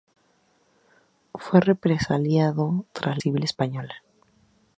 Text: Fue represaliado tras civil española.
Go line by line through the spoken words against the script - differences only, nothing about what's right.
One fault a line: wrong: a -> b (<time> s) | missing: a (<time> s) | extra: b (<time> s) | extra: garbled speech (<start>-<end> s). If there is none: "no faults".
no faults